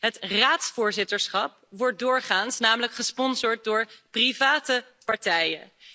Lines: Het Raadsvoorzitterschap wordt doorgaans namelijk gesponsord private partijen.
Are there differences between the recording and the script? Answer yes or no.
yes